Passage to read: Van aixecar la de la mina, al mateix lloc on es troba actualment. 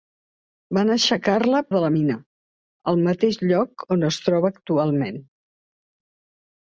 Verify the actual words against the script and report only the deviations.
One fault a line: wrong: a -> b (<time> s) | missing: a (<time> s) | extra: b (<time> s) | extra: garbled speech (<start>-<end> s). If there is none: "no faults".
no faults